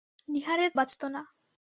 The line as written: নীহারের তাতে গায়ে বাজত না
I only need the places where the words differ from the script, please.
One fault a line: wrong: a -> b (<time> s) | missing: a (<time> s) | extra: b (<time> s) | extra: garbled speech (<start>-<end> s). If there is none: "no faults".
missing: তাতে গায়ে (0.7 s)